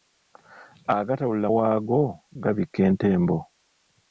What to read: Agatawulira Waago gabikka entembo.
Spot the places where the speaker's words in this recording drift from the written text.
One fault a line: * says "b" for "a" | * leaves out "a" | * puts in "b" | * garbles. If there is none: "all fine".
all fine